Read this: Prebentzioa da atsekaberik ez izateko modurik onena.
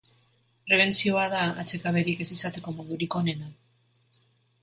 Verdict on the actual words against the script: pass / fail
pass